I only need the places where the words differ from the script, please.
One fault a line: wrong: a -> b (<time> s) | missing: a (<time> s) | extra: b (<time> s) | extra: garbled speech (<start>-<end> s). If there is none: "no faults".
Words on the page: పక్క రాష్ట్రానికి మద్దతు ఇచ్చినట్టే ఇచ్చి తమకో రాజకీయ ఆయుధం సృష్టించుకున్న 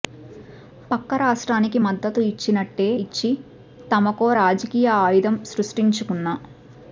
no faults